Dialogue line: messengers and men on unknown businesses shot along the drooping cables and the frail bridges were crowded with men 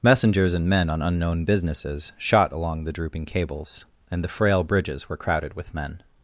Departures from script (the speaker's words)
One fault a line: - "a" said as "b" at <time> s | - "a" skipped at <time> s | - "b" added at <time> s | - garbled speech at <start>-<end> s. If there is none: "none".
none